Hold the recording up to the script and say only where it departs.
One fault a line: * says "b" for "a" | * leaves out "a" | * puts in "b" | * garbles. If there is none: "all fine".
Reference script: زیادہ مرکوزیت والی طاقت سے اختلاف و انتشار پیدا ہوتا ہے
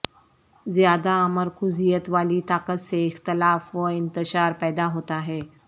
all fine